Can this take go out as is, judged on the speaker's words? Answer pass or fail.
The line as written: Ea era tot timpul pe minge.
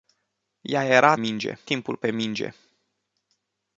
fail